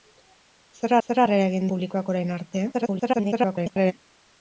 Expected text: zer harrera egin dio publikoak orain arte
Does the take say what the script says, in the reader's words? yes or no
no